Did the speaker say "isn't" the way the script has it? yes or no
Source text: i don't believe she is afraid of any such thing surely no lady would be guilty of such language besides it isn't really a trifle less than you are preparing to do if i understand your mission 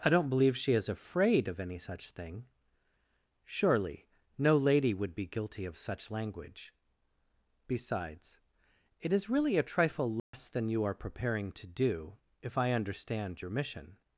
no